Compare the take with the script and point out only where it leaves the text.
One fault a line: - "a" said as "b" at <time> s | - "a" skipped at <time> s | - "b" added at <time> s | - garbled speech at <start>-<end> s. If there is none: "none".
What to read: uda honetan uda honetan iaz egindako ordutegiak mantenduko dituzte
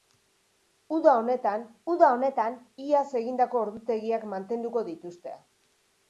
none